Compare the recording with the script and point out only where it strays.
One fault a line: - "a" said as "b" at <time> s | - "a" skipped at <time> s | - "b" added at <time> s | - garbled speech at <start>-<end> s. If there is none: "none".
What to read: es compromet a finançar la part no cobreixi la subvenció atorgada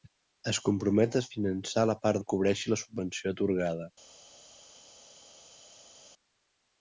none